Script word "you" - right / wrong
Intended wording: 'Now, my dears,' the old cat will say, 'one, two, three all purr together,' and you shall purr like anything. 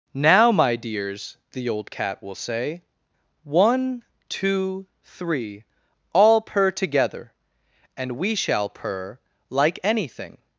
wrong